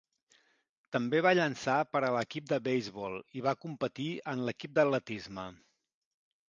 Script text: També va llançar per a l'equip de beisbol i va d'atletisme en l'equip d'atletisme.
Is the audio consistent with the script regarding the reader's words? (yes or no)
no